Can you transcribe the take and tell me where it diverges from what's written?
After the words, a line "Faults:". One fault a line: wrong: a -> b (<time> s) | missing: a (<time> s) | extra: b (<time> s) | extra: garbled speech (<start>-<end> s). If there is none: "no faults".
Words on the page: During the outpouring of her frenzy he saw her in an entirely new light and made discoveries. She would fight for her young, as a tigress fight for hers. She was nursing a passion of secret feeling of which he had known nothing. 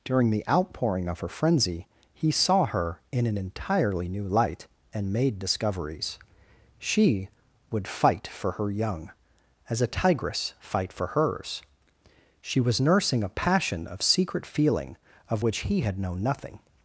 During the outpouring of her frenzy he saw her in an entirely new light and made discoveries. She would fight for her young, as a tigress fight for hers. She was nursing a passion of secret feeling of which he had known nothing.
Faults:
no faults